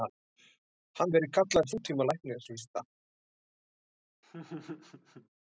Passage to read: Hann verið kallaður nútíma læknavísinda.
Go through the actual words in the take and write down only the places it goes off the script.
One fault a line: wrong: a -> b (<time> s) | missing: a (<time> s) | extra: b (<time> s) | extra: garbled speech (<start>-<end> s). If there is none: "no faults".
no faults